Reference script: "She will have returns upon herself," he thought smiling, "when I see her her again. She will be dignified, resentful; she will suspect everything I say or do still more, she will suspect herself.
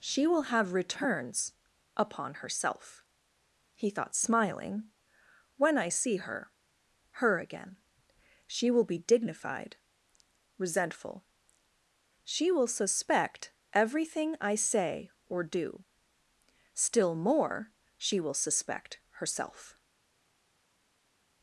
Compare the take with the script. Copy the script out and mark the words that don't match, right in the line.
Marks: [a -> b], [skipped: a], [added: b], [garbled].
"She will have returns upon herself," he thought smiling, "when I see her her again. She will be dignified, resentful; she will suspect everything I say or do still more, she will suspect herself.